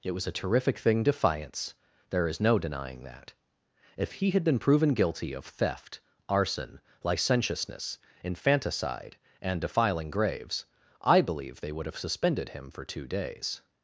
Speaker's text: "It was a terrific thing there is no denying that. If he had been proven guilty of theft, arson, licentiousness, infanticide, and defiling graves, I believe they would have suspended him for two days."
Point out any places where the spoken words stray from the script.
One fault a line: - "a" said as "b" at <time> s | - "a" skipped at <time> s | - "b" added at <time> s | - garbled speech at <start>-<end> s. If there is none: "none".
- "defiance" added at 1.0 s